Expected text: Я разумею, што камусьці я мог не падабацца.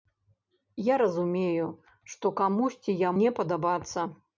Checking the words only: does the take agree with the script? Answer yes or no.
no